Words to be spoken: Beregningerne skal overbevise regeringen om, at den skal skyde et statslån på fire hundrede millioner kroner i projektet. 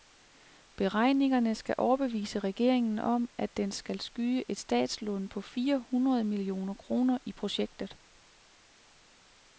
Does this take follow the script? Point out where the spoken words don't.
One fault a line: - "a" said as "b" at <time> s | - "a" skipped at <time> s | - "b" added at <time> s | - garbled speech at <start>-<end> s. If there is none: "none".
none